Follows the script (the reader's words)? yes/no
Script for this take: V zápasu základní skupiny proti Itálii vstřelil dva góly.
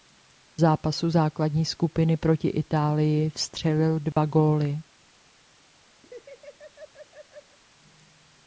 yes